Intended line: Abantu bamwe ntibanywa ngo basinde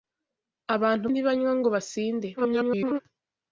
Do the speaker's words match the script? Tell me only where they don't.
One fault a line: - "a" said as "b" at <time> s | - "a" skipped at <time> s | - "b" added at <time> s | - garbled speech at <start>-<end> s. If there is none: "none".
- "bamwe" skipped at 1.1 s
- garbled speech at 2.4-3.0 s